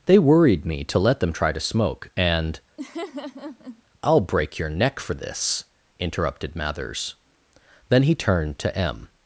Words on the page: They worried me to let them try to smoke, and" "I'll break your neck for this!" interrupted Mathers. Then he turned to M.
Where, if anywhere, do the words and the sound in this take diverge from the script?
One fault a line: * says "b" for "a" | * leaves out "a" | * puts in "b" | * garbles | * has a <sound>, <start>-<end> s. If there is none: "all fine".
* has a laugh, 2.8-3.8 s